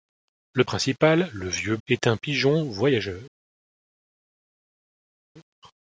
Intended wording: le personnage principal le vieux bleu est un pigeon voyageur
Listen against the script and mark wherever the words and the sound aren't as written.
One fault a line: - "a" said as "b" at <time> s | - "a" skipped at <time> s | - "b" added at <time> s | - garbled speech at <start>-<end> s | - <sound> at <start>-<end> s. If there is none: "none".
- "personnage" skipped at 0.6 s
- "bleu" skipped at 1.8 s